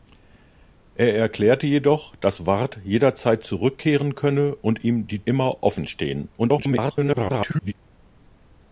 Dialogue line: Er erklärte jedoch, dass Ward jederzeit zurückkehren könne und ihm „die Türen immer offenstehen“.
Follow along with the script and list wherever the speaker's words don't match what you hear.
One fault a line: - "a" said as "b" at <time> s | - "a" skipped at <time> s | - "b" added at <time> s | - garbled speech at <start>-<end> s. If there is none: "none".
- "Türen" skipped at 5.3 s
- garbled speech at 6.4-7.7 s